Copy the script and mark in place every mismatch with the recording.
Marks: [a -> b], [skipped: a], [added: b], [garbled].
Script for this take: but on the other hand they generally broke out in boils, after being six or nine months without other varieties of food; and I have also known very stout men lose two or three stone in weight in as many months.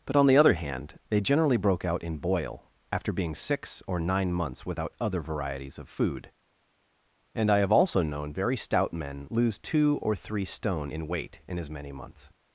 but on the other hand they generally broke out in [boils, -> boil] after being six or nine months without other varieties of food; and I have also known very stout men lose two or three stone in weight in as many months.